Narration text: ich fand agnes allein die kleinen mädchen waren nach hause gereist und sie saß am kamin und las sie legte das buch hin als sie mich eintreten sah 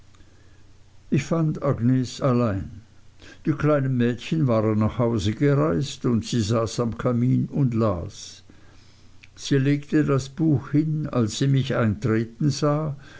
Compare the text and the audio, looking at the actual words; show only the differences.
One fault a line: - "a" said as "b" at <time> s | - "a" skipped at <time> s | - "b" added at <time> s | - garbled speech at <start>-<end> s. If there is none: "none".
none